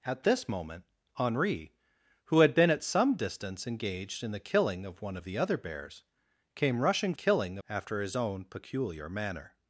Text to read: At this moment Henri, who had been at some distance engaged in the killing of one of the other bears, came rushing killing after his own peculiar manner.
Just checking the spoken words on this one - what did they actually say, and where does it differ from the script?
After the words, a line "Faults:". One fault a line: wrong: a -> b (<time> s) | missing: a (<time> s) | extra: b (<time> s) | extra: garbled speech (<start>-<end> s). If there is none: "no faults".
At this moment Henri, who had been at some distance engaged in the killing of one of the other bears, came rushing killing after his own peculiar manner.
Faults:
no faults